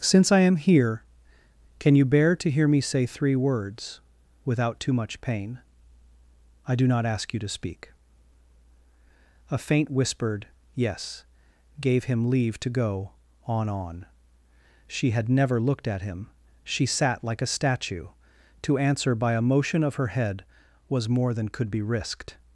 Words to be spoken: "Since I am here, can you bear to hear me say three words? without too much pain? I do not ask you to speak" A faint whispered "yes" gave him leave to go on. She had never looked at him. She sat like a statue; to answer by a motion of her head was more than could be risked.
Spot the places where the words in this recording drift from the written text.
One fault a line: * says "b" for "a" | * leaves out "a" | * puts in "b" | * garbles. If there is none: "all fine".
* puts in "on"